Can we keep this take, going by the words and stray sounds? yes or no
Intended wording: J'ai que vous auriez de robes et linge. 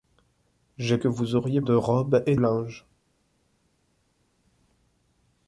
yes